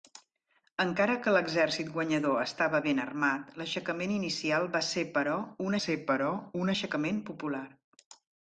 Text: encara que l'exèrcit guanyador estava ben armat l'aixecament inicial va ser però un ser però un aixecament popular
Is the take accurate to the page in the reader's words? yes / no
yes